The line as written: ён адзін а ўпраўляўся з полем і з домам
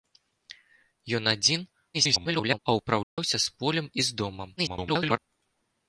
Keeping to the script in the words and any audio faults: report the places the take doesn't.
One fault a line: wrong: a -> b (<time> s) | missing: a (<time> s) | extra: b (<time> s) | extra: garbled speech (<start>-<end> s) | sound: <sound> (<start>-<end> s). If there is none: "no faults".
extra: garbled speech (1.9-2.6 s)
sound: dropout (3.0-3.2 s)
extra: garbled speech (4.6-5.2 s)